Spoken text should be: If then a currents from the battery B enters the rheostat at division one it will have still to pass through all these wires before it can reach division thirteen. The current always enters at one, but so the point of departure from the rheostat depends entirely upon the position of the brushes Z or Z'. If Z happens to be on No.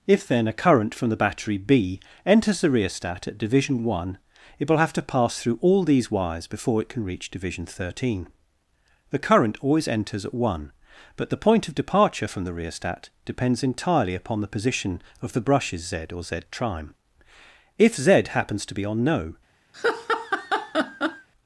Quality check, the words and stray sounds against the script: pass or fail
fail